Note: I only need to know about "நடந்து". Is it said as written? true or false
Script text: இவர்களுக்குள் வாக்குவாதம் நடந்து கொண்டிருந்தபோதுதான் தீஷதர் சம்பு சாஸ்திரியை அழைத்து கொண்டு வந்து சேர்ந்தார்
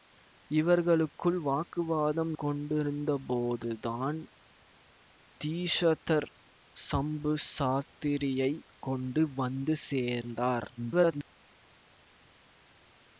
false